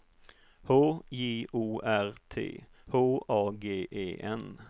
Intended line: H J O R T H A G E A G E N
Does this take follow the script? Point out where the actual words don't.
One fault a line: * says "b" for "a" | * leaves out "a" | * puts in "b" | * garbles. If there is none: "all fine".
* leaves out "A G E"